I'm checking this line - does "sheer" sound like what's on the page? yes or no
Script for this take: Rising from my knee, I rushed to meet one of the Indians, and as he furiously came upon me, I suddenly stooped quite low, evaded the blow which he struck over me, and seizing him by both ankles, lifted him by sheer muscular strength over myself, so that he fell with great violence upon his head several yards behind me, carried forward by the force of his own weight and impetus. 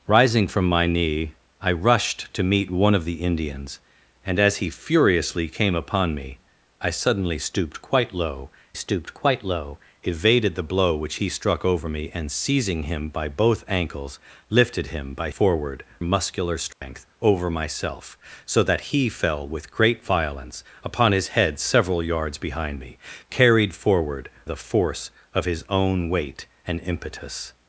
no